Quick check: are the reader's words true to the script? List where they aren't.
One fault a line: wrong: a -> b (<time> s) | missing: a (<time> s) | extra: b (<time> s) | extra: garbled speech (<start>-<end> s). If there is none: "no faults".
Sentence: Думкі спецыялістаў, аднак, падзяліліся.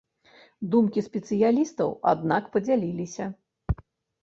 no faults